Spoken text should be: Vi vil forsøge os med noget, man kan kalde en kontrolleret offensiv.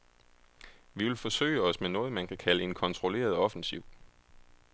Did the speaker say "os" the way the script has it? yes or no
yes